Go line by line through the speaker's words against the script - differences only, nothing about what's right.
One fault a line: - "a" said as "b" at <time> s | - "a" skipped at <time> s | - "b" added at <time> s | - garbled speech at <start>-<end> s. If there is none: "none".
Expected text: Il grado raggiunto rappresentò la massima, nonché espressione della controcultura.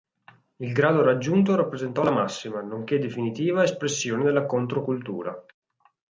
- "definitiva" added at 3.0 s